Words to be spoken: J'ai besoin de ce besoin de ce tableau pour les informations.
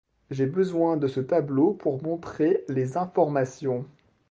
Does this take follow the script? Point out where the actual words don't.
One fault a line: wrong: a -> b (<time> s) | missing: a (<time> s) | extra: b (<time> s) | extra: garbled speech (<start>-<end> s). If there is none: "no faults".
missing: besoin de ce (1.2 s)
extra: montrer (2.0 s)